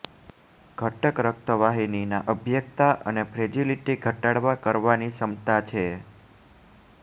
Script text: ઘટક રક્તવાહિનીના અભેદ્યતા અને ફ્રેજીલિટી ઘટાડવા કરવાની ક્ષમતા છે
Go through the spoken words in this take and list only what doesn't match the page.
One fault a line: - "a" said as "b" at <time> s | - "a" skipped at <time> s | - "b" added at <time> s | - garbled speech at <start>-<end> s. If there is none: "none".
none